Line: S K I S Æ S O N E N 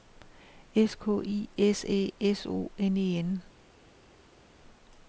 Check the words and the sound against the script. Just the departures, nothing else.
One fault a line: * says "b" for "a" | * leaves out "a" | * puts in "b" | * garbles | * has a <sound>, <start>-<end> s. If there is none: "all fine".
all fine